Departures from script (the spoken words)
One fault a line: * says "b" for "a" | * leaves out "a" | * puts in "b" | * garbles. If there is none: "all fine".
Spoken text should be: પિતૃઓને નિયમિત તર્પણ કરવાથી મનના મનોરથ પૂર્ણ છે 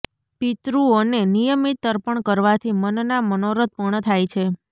* puts in "થાય"